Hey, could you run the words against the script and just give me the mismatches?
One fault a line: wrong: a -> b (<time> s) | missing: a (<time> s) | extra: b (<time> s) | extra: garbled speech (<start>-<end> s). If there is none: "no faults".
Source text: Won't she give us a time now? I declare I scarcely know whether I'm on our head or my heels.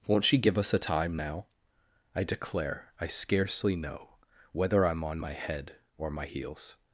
wrong: our -> my (5.2 s)